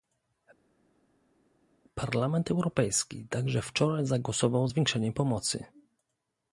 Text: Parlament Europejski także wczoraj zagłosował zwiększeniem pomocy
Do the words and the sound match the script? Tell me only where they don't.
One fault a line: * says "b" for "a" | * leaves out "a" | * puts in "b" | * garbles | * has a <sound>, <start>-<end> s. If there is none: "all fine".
all fine